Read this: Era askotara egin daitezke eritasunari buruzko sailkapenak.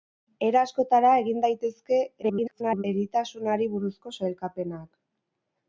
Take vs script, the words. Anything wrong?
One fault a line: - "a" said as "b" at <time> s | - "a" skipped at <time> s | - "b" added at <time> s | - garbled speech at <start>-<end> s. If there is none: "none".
- garbled speech at 2.2-2.8 s